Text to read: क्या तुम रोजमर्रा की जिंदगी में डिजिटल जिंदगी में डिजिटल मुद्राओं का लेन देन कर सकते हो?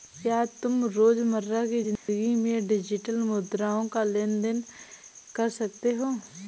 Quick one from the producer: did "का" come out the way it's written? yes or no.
yes